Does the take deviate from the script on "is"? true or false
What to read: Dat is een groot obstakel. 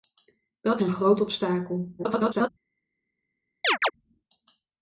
true